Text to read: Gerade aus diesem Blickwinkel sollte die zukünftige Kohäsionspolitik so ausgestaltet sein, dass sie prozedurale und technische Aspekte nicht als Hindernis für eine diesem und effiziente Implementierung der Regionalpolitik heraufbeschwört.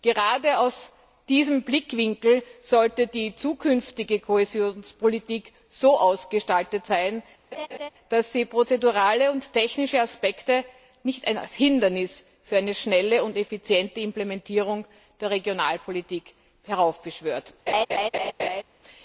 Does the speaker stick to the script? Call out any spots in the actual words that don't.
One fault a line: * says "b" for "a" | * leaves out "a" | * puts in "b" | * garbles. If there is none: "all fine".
* says "schnelle" for "diesem"